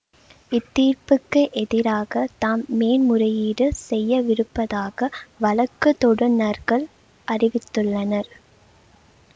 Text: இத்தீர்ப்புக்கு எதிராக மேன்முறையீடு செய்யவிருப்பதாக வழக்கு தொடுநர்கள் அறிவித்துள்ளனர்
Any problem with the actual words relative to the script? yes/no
yes